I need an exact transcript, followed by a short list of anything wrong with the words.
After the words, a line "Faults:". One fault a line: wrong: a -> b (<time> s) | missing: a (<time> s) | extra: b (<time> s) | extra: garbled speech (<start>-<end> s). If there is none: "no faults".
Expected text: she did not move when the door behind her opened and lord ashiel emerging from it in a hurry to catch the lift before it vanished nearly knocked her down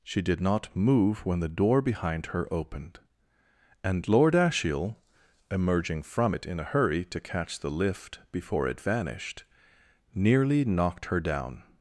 she did not move when the door behind her opened and lord ashiel emerging from it in a hurry to catch the lift before it vanished nearly knocked her down
Faults:
no faults